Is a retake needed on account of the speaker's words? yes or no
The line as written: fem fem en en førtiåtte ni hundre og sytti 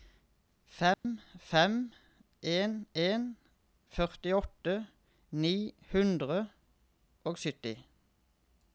no